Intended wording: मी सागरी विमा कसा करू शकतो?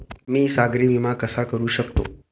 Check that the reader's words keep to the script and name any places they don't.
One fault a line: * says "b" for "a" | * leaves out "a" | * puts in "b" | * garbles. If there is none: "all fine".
all fine